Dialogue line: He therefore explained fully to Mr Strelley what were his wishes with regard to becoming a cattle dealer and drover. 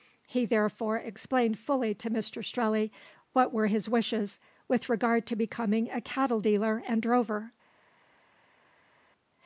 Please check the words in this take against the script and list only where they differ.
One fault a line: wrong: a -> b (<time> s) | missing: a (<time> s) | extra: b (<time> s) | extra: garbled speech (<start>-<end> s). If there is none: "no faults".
no faults